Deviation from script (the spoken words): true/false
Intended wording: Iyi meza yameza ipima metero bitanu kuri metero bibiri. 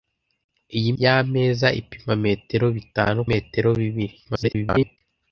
true